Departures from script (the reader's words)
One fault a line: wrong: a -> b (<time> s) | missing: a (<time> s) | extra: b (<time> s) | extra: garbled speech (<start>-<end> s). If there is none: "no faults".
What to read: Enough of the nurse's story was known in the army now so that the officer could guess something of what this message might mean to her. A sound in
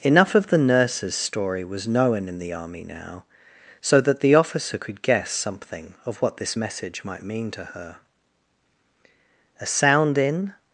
no faults